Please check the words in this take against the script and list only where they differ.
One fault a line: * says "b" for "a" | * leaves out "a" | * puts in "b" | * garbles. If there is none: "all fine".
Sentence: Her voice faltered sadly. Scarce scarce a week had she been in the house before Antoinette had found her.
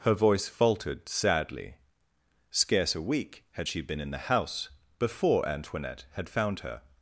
* leaves out "scarce"